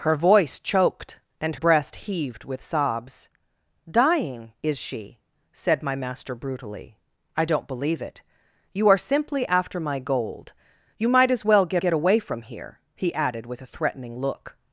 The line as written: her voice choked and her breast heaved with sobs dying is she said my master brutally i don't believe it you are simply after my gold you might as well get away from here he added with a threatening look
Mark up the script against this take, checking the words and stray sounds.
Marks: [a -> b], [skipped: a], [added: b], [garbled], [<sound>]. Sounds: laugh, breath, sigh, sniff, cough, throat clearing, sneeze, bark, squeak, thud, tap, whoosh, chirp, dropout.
her voice choked and [skipped: her] breast heaved with sobs dying is she said my master brutally i don't believe it you are simply after my gold you might as well get [added: get] away from here he added with a threatening look